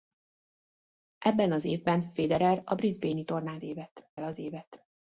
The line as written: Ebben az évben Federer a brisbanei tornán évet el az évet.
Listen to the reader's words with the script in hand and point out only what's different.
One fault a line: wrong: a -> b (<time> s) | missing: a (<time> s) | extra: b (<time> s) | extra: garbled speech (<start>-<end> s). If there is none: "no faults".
no faults